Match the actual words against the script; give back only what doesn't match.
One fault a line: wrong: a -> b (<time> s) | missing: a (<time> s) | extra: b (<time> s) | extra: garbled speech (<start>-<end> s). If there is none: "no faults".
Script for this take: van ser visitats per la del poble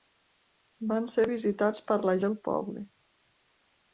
no faults